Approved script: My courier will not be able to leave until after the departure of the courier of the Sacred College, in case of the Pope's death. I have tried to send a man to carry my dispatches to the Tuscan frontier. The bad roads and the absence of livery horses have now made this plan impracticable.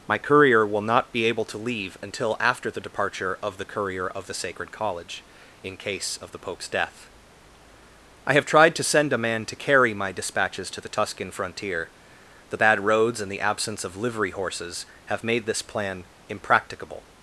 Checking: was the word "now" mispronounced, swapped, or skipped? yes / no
yes